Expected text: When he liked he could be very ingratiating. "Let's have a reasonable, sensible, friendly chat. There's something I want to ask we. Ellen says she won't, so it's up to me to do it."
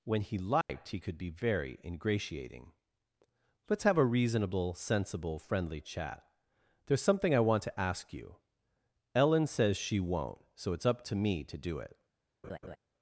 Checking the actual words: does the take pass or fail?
fail